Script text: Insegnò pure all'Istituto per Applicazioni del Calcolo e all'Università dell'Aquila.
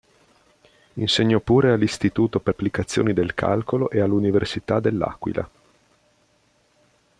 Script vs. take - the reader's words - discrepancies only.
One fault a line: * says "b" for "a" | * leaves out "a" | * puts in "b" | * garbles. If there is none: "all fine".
all fine